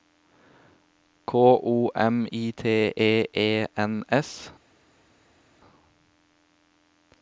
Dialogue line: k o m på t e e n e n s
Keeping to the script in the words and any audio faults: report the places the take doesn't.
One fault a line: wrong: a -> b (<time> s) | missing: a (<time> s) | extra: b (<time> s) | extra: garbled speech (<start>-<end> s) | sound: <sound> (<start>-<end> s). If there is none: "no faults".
wrong: på -> i (2.3 s)
missing: e n (4.0 s)